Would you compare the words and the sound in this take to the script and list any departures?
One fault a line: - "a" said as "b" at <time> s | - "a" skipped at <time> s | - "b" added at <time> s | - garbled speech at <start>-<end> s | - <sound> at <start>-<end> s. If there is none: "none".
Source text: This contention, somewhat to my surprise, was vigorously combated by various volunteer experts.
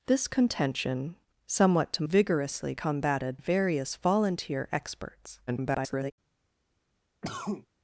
- "my surprise was" skipped at 2.0 s
- "by" skipped at 3.4 s
- garbled speech at 5.5-6.1 s
- cough at 7.2-7.7 s